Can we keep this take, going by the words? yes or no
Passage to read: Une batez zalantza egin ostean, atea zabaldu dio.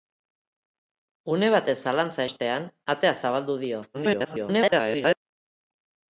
no